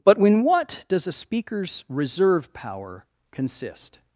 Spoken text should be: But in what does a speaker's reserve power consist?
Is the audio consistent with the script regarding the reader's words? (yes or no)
yes